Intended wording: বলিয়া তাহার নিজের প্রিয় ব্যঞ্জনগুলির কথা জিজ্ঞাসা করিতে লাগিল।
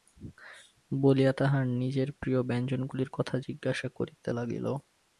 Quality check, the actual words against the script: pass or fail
pass